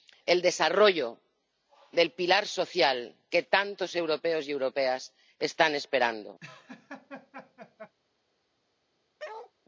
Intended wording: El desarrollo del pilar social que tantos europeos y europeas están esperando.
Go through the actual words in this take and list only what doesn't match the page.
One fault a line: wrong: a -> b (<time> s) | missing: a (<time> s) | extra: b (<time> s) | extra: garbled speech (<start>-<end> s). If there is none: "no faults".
no faults